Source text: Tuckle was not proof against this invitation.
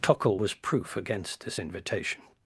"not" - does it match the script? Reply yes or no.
no